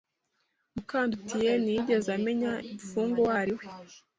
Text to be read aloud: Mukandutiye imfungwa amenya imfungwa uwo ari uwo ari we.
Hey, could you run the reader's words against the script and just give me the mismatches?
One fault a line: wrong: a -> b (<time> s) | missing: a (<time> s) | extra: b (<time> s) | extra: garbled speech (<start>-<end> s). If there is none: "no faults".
wrong: imfungwa -> ntiyigeze (1.6 s)
missing: uwo ari (3.5 s)